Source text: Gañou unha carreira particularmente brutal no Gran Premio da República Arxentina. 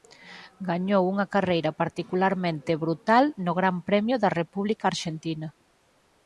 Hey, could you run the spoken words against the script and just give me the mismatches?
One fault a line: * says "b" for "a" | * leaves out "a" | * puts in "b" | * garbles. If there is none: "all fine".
all fine